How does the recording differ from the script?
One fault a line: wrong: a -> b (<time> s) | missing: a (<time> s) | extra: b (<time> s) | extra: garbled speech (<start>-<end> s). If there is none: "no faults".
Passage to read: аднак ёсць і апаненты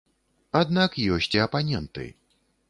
no faults